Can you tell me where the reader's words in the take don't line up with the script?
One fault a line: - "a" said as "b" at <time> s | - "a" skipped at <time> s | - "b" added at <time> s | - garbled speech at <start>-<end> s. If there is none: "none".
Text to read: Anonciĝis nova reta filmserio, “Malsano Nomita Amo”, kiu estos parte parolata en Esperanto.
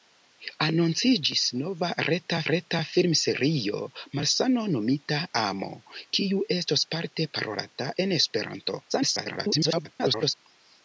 - "reta" added at 2.5 s
- garbled speech at 8.9-10.3 s